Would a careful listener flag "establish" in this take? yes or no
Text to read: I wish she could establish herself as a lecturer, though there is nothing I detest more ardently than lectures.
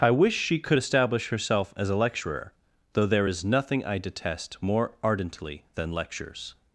no